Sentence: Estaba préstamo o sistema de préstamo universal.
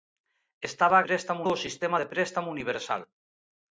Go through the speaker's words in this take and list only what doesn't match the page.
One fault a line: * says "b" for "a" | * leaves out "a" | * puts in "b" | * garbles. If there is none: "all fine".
all fine